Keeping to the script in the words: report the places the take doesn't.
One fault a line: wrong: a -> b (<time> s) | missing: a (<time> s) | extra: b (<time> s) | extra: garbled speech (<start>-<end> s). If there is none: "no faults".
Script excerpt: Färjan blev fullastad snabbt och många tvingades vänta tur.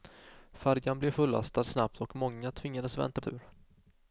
no faults